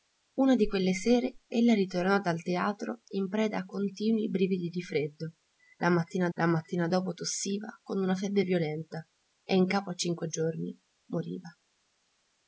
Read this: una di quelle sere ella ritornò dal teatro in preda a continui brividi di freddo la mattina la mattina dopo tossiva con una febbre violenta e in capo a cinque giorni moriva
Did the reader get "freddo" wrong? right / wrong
right